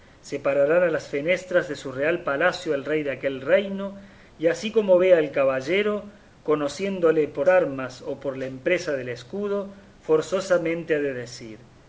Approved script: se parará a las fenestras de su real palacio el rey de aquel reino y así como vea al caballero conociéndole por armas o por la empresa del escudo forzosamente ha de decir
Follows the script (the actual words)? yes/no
yes